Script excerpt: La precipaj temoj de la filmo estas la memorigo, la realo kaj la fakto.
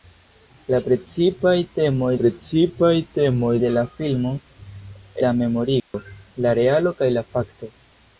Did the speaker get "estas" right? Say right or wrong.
wrong